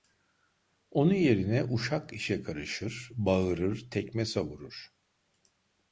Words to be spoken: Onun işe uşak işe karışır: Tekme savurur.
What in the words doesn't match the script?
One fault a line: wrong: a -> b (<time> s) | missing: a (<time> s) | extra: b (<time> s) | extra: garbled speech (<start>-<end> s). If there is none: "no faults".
wrong: işe -> yerine (1.1 s)
extra: Bağırır (3.1 s)